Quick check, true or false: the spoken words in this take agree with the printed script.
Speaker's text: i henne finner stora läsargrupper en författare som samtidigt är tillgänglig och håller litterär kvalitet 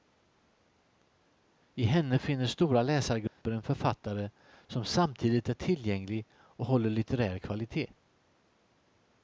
true